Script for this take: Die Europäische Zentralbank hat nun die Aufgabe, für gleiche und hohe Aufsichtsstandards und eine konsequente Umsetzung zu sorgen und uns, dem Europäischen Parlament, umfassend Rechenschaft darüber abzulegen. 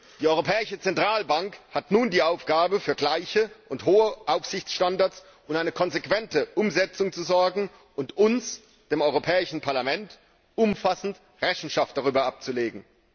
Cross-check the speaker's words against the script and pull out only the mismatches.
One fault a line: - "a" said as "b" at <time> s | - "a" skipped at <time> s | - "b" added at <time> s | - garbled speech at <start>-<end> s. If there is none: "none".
none